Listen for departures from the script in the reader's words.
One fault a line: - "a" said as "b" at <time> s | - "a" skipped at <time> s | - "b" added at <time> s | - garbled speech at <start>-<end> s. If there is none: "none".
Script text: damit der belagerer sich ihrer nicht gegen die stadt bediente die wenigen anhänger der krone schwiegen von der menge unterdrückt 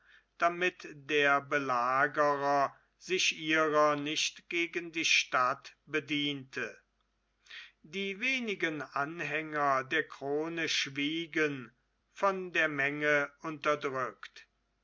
none